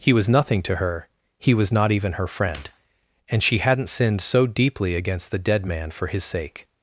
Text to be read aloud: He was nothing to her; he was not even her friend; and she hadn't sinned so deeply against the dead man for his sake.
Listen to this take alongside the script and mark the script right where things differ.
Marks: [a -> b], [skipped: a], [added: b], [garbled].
He was nothing to her; he was not even her friend; and she hadn't sinned so deeply against the dead man for his sake.